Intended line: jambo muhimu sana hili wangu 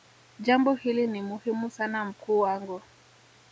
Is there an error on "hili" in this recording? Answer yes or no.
yes